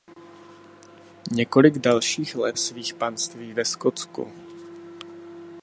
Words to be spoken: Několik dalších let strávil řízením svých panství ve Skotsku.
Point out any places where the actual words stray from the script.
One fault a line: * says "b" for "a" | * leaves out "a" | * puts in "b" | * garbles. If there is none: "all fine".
* leaves out "strávil řízením"